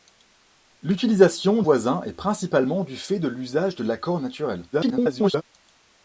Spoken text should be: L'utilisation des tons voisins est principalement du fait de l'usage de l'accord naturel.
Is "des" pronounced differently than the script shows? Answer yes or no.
yes